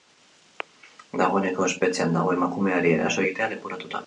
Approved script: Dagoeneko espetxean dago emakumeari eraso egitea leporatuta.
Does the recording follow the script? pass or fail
pass